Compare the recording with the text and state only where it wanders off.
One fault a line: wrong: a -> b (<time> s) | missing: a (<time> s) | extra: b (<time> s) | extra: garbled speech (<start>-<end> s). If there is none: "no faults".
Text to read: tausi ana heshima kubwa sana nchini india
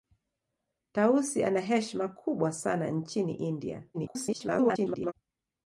extra: garbled speech (3.9-5.1 s)